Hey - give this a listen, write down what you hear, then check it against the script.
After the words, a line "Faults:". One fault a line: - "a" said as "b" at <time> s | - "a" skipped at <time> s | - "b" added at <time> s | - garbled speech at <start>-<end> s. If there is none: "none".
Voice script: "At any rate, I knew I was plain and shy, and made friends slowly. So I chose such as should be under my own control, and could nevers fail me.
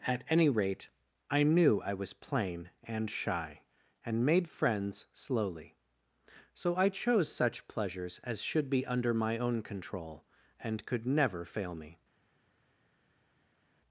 "At any rate, I knew I was plain and shy, and made friends slowly. So I chose such pleasures as should be under my own control, and could never fail me.
Faults:
- "pleasures" added at 7.7 s
- "nevers" said as "never" at 11.1 s